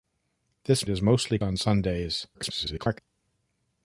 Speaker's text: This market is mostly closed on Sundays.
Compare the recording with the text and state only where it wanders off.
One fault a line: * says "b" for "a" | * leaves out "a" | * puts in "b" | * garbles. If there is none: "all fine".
* leaves out "market"
* leaves out "closed"
* garbles